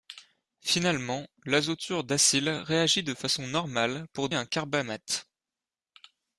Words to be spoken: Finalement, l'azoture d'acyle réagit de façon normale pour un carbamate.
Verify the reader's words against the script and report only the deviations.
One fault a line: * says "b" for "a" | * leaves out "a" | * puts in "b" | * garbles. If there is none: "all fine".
all fine